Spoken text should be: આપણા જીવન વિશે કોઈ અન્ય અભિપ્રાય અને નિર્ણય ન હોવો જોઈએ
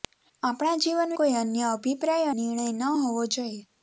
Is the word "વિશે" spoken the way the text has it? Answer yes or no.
no